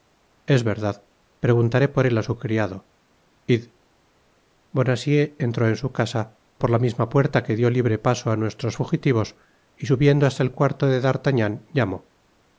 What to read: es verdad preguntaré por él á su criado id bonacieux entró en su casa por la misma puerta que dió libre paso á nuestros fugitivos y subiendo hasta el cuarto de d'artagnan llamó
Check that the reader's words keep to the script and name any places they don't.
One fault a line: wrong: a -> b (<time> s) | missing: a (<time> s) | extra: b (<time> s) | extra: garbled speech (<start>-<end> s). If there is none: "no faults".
no faults